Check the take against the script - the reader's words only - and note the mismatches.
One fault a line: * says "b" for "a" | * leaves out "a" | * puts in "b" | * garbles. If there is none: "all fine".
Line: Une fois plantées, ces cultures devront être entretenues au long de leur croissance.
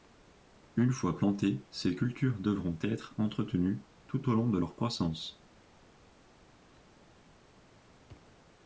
* puts in "tout"